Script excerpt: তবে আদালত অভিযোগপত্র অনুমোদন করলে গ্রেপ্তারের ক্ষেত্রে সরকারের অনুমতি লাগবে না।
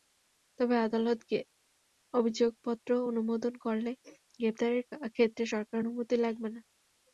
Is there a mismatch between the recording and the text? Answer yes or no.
no